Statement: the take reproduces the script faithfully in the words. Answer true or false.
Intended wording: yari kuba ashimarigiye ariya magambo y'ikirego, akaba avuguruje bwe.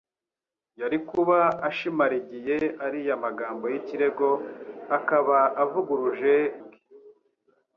true